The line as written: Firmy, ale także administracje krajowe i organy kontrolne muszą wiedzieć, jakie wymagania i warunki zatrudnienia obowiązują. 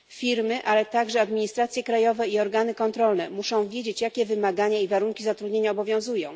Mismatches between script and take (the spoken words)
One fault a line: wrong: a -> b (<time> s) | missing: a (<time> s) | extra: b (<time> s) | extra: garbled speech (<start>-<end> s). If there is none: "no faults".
no faults